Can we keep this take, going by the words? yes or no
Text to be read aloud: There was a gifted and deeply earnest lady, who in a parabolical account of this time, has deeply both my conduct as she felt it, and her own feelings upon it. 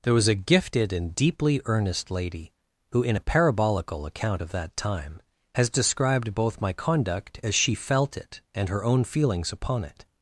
no